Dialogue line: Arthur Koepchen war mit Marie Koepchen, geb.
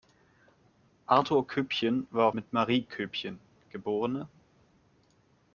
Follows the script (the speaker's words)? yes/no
yes